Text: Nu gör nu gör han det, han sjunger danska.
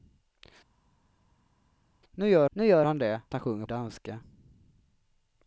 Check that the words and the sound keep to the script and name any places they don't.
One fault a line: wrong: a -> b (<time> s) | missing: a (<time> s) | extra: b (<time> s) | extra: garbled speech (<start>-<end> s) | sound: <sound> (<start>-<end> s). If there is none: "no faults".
no faults